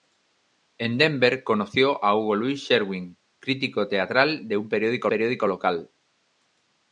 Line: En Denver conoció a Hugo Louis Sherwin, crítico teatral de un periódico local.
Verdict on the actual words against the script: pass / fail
fail